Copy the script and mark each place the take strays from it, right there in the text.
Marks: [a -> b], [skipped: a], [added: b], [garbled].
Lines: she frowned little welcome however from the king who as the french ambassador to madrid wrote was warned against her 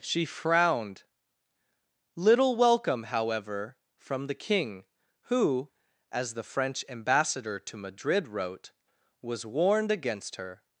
she frowned little welcome however from the king who as the french ambassador to madrid wrote was warned against her